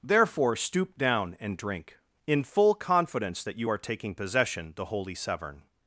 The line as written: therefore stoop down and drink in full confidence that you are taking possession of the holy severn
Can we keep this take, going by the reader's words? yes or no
no